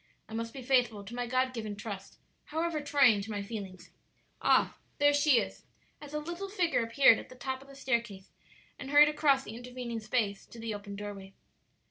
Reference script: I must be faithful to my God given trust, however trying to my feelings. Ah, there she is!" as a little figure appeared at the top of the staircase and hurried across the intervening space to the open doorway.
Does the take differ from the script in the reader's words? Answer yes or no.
no